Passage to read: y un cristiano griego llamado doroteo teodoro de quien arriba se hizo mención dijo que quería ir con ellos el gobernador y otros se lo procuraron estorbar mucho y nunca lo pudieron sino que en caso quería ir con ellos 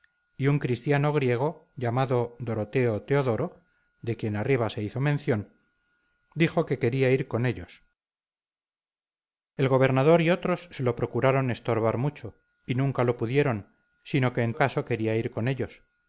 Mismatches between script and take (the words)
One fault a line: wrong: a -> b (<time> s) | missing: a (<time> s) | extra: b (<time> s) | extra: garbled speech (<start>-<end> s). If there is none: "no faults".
no faults